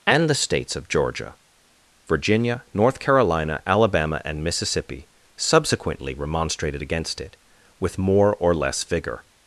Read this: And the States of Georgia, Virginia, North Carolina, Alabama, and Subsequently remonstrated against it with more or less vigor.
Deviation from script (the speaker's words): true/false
true